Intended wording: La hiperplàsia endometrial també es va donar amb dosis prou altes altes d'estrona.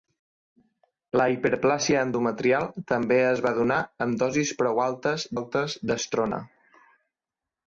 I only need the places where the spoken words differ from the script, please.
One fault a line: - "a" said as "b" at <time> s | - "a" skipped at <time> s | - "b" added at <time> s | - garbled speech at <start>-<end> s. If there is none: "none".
none